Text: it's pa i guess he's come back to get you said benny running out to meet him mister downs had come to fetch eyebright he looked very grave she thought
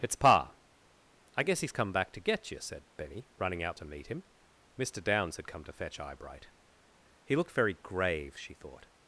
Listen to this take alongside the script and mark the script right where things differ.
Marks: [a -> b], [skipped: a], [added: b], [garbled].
it's pa i guess he's come back to get you said benny running out to meet him mister downs had come to fetch eyebright he looked very grave she thought